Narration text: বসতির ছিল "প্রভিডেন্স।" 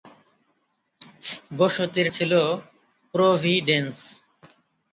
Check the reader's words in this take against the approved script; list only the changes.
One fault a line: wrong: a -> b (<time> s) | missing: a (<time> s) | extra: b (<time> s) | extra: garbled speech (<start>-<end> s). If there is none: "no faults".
no faults